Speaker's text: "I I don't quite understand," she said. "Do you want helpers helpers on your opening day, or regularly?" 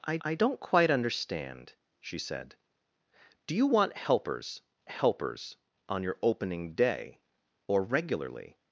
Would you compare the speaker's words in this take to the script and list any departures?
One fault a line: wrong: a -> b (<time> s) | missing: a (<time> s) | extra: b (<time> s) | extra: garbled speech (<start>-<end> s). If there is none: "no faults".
no faults